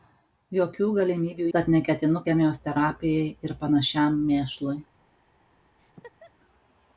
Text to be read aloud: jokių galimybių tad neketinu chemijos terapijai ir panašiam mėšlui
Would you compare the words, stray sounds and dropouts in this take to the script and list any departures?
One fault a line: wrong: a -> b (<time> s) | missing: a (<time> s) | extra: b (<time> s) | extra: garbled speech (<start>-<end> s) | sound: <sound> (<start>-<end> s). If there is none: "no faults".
sound: laugh (5.8-6.3 s)